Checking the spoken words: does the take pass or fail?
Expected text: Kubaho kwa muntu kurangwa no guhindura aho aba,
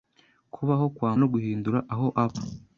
fail